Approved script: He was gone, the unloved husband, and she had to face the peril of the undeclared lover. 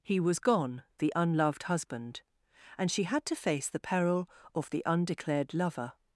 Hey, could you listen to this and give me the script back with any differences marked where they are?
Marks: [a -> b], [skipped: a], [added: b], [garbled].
He was gone, the unloved husband, and she had to face the peril of the undeclared lover.